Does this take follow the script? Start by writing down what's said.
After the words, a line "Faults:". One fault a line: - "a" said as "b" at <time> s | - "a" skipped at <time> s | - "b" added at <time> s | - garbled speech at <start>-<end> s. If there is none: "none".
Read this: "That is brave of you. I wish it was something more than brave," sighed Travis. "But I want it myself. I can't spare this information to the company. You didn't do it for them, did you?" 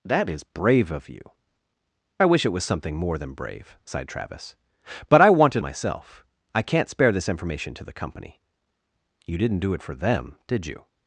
"That is brave of you. I wish it was something more than brave," sighed Travis. "But I want it myself. I can't spare this information to the company. You didn't do it for them, did you?"
Faults:
none